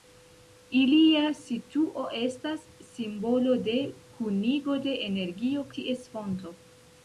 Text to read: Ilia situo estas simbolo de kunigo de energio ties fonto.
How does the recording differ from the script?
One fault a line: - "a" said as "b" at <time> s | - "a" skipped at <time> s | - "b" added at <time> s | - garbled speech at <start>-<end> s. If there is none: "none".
none